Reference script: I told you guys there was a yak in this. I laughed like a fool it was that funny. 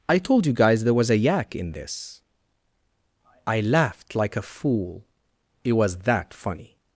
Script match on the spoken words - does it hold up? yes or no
yes